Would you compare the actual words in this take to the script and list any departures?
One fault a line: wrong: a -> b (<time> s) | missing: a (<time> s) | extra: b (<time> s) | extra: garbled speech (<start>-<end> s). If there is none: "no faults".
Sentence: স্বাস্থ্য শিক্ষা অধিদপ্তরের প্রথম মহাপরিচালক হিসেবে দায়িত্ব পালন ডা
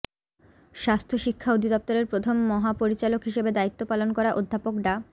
extra: করা অধ্যাপক (4.2 s)